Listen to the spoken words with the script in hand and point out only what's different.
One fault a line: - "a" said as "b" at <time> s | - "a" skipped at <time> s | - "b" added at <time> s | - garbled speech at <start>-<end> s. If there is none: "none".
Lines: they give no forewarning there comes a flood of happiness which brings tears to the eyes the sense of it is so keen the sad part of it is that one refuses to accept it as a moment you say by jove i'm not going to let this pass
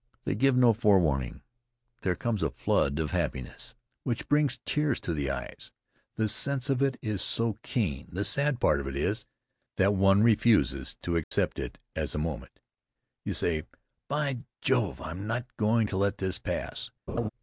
none